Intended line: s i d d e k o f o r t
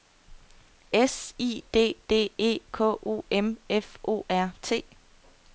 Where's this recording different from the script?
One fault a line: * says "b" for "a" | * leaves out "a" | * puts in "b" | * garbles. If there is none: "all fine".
* puts in "m"